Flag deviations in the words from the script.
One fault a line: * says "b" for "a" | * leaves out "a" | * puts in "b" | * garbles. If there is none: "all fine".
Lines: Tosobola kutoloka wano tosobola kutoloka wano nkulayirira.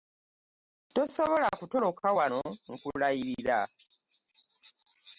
* leaves out "tosobola kutoloka wano"